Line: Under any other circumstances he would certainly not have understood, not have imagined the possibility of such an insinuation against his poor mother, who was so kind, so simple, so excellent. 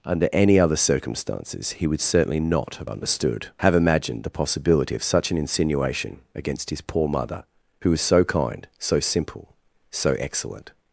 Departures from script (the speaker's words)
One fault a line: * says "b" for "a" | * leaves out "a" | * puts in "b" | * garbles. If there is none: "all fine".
* leaves out "not"